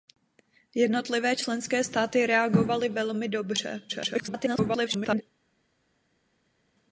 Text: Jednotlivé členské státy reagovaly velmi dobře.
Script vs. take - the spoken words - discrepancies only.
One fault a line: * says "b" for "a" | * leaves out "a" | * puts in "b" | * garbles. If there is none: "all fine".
* garbles